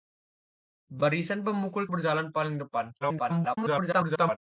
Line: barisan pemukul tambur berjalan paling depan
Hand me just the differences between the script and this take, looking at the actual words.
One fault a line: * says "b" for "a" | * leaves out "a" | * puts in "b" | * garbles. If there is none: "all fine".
* leaves out "tambur"
* garbles